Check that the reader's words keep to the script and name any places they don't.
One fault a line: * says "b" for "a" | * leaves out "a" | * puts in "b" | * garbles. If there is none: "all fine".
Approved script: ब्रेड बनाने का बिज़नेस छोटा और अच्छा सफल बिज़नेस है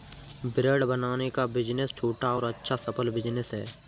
all fine